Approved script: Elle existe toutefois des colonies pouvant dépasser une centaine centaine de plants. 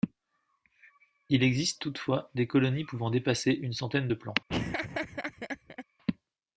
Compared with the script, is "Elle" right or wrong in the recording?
wrong